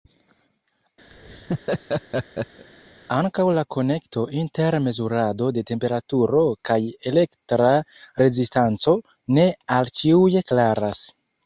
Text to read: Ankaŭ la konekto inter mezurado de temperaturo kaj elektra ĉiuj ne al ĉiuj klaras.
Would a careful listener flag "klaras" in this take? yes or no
no